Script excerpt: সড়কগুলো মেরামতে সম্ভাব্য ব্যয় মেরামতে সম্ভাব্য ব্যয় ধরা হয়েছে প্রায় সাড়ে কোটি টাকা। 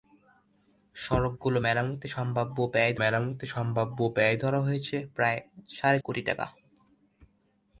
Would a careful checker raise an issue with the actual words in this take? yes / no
no